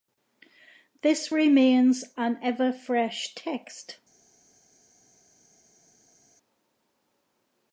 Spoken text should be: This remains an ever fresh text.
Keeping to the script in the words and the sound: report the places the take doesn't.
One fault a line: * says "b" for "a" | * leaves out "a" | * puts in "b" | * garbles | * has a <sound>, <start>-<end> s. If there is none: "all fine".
all fine